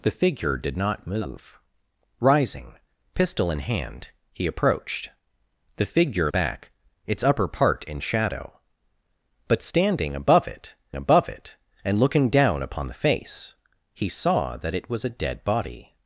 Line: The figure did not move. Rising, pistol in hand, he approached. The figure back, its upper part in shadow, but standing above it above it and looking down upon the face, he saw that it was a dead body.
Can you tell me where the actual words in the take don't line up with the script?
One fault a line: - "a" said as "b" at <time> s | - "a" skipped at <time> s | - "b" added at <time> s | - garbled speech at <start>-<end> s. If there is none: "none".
none